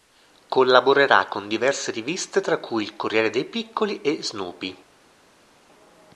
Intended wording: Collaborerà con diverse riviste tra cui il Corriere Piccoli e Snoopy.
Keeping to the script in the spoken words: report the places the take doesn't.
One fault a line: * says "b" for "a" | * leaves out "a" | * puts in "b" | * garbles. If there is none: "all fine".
* puts in "dei"